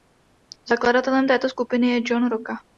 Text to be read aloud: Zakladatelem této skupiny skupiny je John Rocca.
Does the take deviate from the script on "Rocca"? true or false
false